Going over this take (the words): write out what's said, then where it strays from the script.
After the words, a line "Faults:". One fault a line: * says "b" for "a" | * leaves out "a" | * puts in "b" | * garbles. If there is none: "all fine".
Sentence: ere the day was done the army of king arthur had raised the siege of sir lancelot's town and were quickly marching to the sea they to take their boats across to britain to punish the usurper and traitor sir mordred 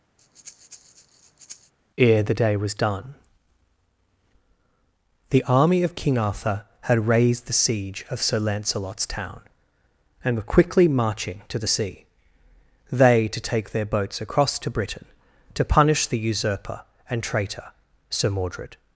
ere the day was done the army of king arthur had raised the siege of sir lancelot's town and were quickly marching to the sea they to take their boats across to britain to punish the usurper and traitor sir mordred
Faults:
all fine